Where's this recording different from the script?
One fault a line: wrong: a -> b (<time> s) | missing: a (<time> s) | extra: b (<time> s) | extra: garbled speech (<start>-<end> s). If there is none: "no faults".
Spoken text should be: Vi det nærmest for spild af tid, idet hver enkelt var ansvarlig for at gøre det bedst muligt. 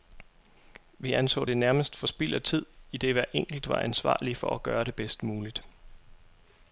extra: anså (1.1 s)